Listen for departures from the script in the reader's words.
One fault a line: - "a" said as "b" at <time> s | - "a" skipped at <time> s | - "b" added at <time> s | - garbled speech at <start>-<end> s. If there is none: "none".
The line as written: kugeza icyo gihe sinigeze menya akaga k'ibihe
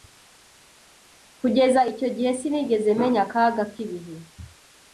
none